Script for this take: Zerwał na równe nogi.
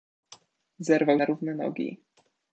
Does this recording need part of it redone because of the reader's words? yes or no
no